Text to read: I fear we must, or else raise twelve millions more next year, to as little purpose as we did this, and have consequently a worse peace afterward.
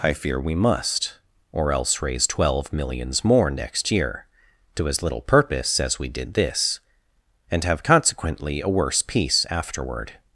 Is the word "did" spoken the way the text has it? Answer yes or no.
yes